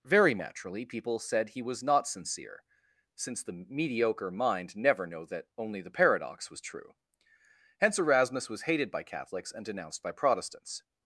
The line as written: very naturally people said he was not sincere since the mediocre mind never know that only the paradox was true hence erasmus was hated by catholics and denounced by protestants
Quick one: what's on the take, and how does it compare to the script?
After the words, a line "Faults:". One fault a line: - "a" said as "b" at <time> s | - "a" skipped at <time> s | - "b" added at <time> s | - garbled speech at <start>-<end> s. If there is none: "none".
very naturally people said he was not sincere since the mediocre mind never know that only the paradox was true hence erasmus was hated by catholics and denounced by protestants
Faults:
none